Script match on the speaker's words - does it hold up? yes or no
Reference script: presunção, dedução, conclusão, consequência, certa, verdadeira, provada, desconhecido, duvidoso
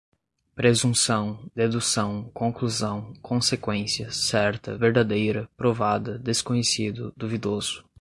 yes